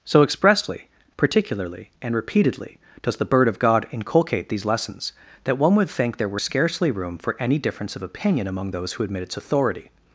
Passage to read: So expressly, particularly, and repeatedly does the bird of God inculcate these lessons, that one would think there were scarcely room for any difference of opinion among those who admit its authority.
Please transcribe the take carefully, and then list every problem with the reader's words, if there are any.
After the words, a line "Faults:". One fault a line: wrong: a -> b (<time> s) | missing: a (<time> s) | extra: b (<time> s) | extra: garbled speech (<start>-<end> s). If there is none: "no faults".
So expressly, particularly, and repeatedly does the bird of God inculcate these lessons, that one would think there were scarcely room for any difference of opinion among those who admit its authority.
Faults:
no faults